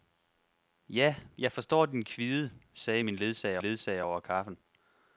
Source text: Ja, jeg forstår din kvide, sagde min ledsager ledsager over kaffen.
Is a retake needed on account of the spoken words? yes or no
no